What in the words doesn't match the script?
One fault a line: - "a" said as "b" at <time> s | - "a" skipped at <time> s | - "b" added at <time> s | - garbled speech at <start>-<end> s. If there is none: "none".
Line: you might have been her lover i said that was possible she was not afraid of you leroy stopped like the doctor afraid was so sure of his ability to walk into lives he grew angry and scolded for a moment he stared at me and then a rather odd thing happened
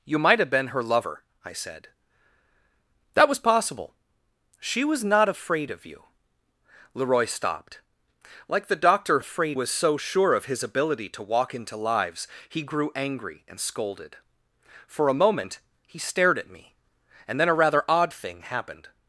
none